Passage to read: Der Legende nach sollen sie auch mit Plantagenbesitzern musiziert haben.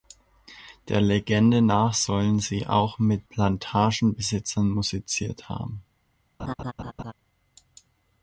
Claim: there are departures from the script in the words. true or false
false